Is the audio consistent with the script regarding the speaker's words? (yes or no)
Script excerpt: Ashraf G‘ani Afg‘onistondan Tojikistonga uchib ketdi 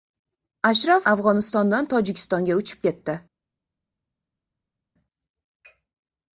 no